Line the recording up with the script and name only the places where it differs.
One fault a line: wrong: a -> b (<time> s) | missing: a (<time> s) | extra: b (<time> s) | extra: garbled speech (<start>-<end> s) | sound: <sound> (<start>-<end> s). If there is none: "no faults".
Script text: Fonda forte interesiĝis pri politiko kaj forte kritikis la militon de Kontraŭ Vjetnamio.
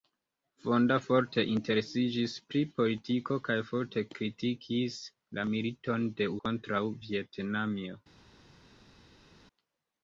no faults